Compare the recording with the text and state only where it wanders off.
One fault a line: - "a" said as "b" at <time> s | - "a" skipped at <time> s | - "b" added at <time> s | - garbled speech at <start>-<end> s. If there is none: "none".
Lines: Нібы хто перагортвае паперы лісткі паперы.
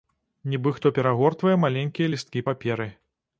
- "паперы" said as "маленькія" at 1.7 s